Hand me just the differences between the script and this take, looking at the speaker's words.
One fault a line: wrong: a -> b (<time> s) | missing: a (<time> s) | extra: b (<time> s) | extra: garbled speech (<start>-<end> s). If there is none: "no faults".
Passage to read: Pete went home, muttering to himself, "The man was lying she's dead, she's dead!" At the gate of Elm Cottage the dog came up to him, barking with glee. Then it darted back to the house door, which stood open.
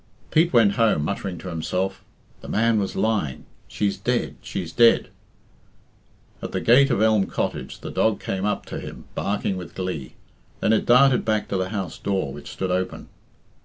no faults